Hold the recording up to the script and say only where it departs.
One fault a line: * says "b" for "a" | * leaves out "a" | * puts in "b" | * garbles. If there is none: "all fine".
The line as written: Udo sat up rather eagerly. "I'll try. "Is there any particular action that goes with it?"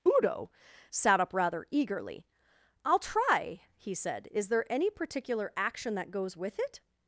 * puts in "he said"